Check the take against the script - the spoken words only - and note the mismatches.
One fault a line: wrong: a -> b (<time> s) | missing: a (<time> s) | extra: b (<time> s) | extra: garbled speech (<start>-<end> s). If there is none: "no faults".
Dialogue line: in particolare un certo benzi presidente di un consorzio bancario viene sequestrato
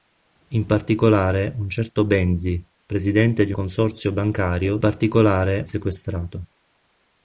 missing: un (3.5 s)
wrong: viene -> particolare (4.8 s)